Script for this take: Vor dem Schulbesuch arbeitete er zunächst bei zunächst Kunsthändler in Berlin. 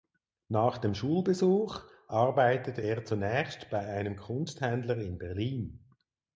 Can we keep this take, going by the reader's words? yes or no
no